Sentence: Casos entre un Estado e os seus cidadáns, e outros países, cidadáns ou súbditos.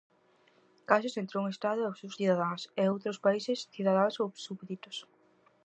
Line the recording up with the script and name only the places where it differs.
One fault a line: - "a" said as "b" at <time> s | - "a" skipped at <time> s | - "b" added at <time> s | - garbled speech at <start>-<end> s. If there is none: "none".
none